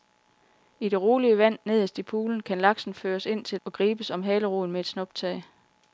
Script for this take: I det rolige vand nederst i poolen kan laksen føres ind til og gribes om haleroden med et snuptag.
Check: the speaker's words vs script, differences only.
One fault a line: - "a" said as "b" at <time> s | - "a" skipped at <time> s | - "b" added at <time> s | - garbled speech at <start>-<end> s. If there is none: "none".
none